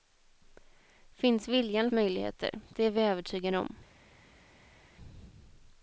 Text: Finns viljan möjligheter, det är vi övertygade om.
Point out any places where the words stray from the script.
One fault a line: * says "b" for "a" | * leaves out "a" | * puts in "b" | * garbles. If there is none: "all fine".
all fine